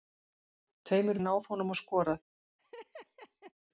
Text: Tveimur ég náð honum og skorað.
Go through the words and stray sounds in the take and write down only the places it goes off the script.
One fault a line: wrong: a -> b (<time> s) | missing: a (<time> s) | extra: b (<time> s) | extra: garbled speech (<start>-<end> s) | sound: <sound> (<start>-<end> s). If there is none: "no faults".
sound: laugh (2.6-3.5 s)